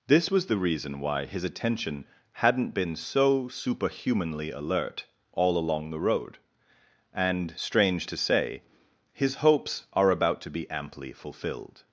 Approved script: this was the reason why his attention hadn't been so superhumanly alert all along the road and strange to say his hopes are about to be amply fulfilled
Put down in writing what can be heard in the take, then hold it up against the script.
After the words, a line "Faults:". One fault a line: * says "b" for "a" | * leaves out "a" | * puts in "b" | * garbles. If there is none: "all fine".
this was the reason why his attention hadn't been so superhumanly alert all along the road and strange to say his hopes are about to be amply fulfilled
Faults:
all fine